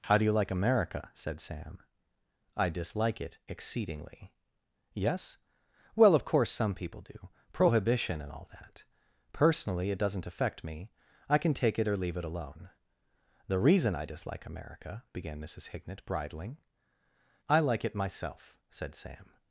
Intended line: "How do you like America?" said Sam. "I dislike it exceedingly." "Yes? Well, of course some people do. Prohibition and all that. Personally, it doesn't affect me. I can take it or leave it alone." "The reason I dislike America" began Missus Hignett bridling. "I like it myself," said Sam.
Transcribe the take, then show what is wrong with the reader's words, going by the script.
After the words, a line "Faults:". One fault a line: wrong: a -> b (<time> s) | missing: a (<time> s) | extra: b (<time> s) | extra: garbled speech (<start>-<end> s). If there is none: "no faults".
"How do you like America?" said Sam. "I dislike it exceedingly." "Yes? Well, of course some people do. Prohibition and all that. Personally, it doesn't affect me. I can take it or leave it alone." "The reason I dislike America" began Missus Hignett bridling. "I like it myself," said Sam.
Faults:
no faults